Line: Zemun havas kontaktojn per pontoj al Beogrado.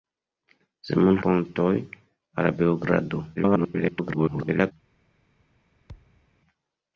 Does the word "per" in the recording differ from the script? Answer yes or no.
yes